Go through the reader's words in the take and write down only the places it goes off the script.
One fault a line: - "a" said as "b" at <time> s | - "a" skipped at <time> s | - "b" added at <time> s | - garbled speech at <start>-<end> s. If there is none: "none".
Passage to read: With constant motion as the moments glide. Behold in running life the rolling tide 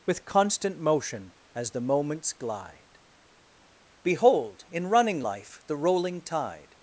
none